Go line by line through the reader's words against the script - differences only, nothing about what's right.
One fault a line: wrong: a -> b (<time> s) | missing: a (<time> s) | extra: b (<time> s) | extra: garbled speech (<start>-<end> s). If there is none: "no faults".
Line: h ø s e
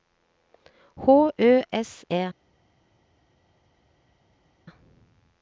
no faults